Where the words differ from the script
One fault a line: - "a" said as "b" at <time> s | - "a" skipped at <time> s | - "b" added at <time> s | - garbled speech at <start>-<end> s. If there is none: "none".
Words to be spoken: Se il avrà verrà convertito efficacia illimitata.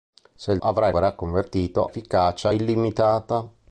none